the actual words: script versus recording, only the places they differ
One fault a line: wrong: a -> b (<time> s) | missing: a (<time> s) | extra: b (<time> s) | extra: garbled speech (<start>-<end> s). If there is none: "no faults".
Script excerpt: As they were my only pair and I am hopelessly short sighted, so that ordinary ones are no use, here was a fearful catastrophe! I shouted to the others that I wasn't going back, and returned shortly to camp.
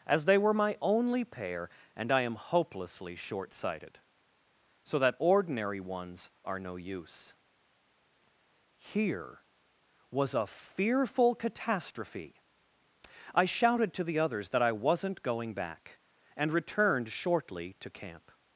no faults